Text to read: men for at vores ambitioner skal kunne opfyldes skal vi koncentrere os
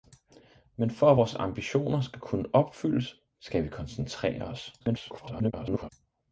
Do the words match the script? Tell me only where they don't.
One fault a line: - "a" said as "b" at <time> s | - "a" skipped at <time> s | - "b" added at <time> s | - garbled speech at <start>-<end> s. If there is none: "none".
- garbled speech at 4.8-5.9 s